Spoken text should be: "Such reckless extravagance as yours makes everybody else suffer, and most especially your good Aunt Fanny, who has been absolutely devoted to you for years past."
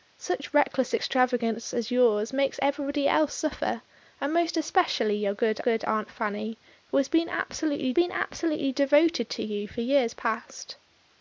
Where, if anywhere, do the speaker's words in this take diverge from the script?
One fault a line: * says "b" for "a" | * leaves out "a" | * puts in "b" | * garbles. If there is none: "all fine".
* puts in "good"
* puts in "been absolutely"